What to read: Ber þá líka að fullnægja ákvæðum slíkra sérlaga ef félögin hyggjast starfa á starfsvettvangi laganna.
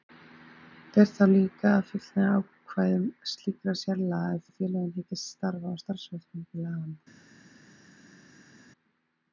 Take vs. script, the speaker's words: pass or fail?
fail